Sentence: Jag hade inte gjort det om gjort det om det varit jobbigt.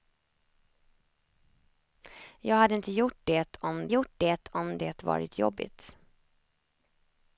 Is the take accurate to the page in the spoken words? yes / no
yes